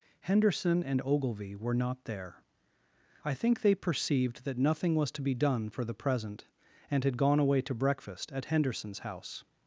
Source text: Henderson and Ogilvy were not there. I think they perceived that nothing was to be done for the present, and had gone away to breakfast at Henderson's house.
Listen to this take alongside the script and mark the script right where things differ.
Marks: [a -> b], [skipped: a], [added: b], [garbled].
Henderson and Ogilvy were not there. I think they perceived that nothing was to be done for the present, and had gone away to breakfast at Henderson's house.